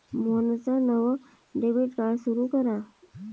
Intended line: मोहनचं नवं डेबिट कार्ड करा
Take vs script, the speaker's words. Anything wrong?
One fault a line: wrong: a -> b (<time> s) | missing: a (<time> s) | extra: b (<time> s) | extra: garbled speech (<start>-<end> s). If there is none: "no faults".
extra: सुरू (2.2 s)